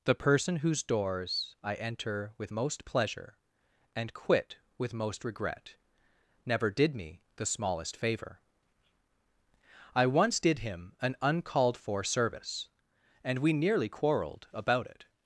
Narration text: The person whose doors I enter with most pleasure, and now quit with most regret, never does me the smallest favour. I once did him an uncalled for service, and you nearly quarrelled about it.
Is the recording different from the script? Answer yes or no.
yes